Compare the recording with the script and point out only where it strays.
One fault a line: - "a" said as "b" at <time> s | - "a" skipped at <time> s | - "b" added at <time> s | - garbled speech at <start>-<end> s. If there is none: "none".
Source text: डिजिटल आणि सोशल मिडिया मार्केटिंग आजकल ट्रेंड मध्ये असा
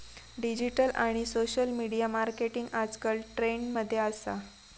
none